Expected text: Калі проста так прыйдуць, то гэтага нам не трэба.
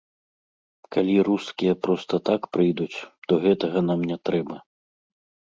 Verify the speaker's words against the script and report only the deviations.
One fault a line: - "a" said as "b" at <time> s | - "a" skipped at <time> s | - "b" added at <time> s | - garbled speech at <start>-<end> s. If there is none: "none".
- "рускія" added at 1.3 s